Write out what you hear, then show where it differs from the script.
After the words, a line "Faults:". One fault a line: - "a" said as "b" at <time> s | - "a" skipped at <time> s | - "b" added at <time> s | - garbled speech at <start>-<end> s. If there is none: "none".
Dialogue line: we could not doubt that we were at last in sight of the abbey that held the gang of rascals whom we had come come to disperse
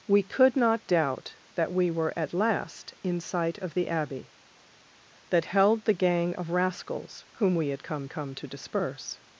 we could not doubt that we were at last in sight of the abbey that held the gang of rascals whom we had come come to disperse
Faults:
none